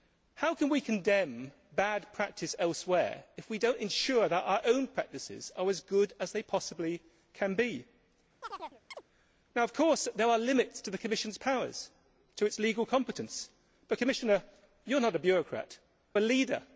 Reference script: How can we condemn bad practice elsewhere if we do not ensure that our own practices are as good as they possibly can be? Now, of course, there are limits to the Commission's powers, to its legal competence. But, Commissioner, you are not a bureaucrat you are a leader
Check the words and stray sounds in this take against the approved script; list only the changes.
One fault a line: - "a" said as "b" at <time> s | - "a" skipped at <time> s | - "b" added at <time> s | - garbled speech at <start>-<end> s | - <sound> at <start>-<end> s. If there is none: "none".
- chirp at 8.4-9.0 s
- "you" skipped at 15.8 s